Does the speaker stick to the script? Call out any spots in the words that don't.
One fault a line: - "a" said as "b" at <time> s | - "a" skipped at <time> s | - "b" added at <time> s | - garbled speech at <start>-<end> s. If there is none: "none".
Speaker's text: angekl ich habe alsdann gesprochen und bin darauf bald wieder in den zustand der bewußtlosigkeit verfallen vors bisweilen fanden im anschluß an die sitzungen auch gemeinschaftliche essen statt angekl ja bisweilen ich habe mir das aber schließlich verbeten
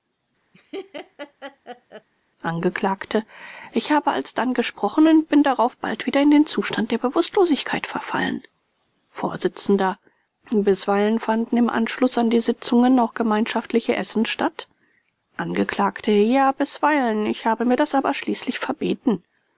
none